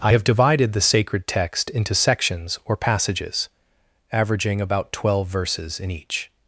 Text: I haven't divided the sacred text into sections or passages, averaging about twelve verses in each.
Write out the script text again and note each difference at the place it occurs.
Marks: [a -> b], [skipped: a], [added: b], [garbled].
I [haven't -> have] divided the sacred text into sections or passages, averaging about twelve verses in each.